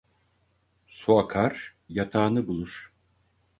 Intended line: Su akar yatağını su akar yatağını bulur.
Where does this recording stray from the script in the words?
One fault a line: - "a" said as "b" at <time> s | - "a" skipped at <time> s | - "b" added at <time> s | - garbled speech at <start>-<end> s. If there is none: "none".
- "su akar yatağını" skipped at 2.5 s